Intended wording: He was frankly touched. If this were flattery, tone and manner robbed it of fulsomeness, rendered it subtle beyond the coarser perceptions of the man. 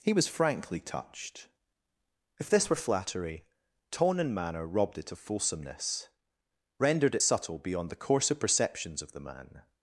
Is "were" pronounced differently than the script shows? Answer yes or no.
no